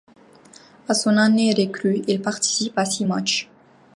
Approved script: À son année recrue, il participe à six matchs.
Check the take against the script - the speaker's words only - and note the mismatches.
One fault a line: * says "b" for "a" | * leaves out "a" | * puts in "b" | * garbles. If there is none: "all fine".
all fine